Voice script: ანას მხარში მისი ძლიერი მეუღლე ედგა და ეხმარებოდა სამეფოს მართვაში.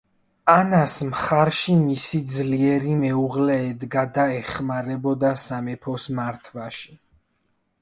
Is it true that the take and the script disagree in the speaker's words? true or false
false